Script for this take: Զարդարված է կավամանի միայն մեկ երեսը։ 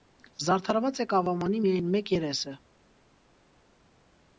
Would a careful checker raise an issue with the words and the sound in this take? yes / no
no